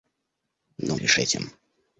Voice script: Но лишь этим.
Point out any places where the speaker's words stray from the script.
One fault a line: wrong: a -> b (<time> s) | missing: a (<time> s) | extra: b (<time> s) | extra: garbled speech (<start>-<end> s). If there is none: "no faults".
no faults